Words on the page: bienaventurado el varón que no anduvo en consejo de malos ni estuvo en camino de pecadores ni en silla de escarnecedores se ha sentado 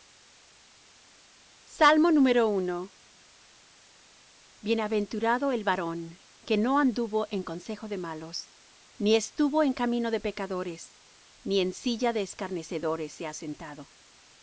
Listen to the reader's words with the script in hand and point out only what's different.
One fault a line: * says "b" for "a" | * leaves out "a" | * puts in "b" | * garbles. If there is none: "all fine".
all fine